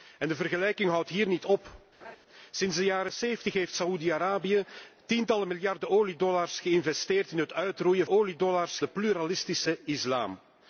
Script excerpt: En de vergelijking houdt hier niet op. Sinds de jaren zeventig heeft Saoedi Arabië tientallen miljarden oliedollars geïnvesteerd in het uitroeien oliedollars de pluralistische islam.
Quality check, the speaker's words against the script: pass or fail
pass